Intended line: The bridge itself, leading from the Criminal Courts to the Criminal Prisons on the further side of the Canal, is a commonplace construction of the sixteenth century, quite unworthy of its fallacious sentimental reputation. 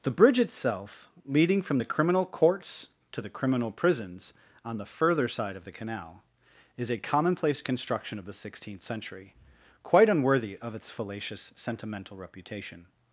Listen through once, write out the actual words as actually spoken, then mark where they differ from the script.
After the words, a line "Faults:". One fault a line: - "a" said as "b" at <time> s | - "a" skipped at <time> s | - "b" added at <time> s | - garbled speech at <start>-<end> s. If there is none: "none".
The bridge itself, leading from the Criminal Courts to the Criminal Prisons on the further side of the Canal, is a commonplace construction of the sixteenth century, quite unworthy of its fallacious sentimental reputation.
Faults:
none